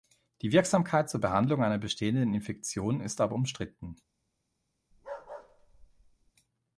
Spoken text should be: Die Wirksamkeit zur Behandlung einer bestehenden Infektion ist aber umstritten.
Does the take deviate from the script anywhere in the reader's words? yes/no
no